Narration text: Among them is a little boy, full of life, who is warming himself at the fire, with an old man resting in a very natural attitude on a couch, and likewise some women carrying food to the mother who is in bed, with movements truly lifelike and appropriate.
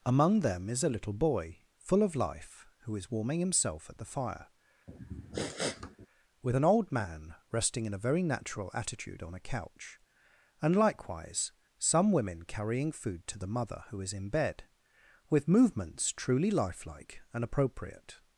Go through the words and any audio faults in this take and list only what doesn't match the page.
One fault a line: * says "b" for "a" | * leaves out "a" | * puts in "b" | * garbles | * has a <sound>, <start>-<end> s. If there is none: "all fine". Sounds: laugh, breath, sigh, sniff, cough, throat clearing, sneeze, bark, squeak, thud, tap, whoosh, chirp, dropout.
* has a sniff, 4.9-6.1 s